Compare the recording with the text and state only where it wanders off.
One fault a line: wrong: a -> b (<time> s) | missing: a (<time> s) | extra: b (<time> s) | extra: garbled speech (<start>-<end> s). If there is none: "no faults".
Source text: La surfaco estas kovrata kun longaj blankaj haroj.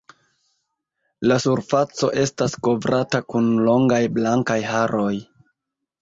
no faults